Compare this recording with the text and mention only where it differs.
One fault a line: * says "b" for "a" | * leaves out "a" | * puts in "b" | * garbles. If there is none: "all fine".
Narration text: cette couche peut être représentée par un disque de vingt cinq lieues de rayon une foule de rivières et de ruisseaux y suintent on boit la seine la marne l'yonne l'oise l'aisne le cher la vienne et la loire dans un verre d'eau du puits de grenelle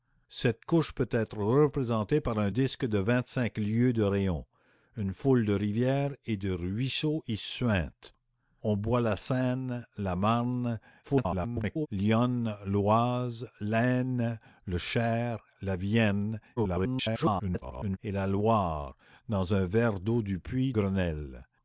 * garbles
* garbles
* leaves out "de"